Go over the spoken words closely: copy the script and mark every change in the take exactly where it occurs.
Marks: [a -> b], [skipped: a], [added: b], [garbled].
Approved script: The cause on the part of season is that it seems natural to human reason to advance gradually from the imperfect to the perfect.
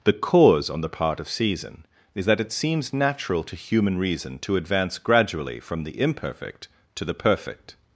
The cause on the part of season is that it seems natural to human reason to advance gradually from the imperfect to the perfect.